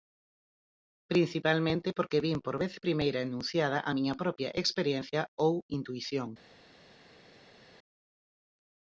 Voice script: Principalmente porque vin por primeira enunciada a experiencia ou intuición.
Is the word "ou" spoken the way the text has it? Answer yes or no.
yes